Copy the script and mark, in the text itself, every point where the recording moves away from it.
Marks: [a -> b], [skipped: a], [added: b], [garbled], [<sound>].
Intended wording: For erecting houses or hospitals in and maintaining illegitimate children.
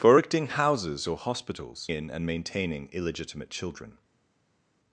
For erecting houses or hospitals in and maintaining illegitimate children.